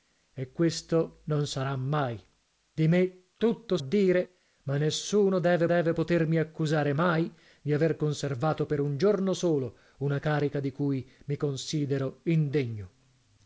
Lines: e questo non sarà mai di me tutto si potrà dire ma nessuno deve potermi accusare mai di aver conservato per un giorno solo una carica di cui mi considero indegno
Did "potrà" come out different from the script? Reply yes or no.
yes